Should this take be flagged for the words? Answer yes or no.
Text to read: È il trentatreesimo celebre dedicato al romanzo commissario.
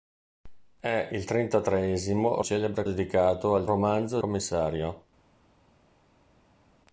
no